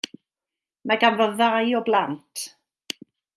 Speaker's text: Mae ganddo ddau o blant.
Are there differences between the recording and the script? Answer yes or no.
no